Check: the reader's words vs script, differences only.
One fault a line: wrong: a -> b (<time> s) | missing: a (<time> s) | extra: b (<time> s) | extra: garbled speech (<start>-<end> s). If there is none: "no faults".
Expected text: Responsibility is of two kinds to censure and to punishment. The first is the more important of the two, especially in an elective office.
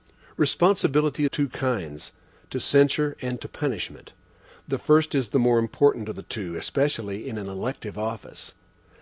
missing: is of (1.2 s)